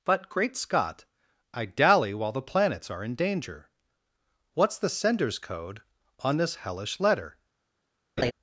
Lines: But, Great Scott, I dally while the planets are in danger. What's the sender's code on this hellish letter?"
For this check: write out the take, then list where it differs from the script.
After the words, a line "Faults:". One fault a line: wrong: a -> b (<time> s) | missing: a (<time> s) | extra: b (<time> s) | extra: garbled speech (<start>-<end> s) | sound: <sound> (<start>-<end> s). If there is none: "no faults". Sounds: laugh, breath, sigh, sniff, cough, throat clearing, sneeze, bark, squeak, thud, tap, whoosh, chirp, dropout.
But, Great Scott, I dally while the planets are in danger. What's the sender's code on this hellish letter?"
Faults:
sound: laugh (8.2-8.3 s)